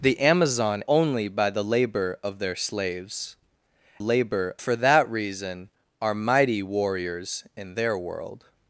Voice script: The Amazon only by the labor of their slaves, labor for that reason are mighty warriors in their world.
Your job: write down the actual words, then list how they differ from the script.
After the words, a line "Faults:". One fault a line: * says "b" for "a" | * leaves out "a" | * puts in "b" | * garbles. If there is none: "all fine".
The Amazon only by the labor of their slaves, labor for that reason are mighty warriors in their world.
Faults:
all fine